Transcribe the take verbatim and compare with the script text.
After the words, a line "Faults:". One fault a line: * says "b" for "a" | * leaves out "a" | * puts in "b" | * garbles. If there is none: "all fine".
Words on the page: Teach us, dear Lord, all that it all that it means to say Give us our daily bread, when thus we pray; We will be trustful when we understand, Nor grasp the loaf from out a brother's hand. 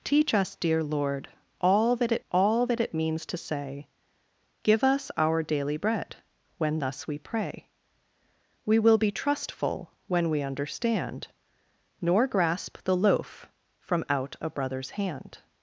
Teach us, dear Lord, all that it all that it means to say Give us our daily bread, when thus we pray; We will be trustful when we understand, Nor grasp the loaf from out a brother's hand.
Faults:
all fine